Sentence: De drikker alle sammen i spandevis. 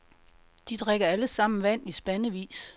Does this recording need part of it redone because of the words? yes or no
yes